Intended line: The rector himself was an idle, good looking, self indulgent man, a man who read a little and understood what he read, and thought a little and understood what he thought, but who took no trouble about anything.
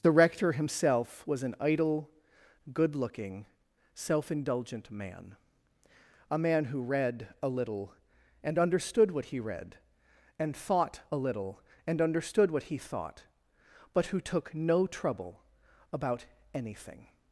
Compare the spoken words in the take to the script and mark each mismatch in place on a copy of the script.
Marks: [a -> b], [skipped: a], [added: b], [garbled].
The rector himself was an idle, good looking, self indulgent man, a man who read a little and understood what he read, and thought a little and understood what he thought, but who took no trouble about anything.